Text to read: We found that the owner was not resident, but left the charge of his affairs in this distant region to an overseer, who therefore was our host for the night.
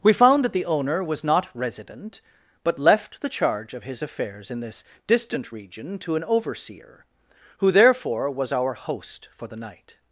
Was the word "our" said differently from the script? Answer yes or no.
no